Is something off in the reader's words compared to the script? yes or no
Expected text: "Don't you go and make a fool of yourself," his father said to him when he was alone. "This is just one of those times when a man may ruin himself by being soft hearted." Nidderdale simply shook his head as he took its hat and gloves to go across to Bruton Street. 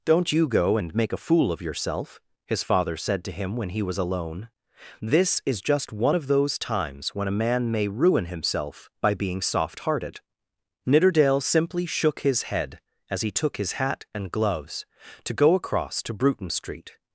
yes